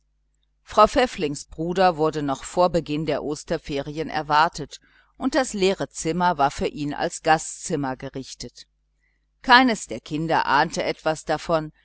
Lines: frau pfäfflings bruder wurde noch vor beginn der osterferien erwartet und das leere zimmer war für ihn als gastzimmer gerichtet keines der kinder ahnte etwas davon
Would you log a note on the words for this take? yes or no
no